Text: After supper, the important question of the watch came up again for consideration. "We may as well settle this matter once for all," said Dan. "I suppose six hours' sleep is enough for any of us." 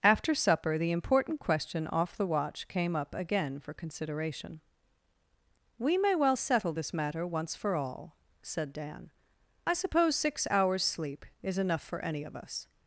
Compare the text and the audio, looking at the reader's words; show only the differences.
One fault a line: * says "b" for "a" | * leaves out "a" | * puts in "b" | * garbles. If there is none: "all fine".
* says "off" for "of"
* leaves out "as"